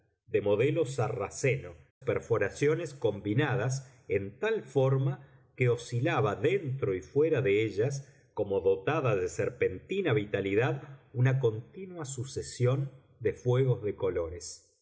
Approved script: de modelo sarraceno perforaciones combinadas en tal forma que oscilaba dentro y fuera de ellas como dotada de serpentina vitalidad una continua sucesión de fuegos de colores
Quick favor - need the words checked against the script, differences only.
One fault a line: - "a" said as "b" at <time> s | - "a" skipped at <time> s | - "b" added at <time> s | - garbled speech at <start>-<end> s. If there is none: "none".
none